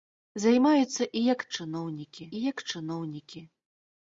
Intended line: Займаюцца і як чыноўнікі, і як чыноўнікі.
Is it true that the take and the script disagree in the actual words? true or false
false